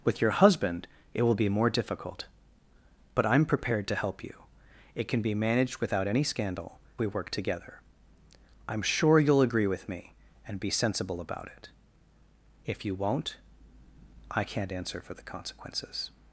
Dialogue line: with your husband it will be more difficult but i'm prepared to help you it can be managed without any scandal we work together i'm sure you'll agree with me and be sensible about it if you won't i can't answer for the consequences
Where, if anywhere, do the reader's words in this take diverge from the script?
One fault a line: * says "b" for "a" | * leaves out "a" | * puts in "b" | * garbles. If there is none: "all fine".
all fine